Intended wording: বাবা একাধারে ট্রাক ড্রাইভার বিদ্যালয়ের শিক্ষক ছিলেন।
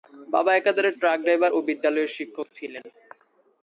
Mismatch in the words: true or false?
true